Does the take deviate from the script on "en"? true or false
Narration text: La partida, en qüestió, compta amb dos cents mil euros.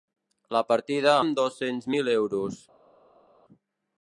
true